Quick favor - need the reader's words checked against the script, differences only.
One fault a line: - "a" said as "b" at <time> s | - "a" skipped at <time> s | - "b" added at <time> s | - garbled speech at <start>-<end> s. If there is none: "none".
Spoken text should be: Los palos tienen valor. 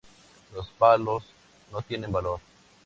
- "no" added at 1.7 s